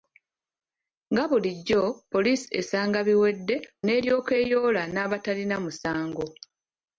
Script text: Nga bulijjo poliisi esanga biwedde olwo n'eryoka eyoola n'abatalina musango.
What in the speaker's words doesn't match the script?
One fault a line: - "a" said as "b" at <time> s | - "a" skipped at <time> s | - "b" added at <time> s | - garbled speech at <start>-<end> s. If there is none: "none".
- "olwo" skipped at 3.5 s